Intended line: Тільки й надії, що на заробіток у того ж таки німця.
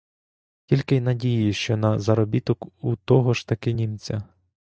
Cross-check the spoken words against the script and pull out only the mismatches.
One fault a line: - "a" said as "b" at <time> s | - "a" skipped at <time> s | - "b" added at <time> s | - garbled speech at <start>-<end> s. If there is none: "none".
none